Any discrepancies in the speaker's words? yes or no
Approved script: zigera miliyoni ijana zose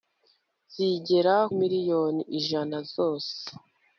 no